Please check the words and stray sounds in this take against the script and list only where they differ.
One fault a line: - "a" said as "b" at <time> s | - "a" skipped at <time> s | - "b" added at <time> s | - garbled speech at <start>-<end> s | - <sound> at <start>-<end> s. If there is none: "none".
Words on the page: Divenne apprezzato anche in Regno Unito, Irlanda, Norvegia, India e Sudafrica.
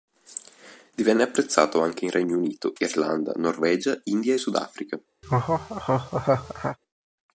- laugh at 5.2-6.8 s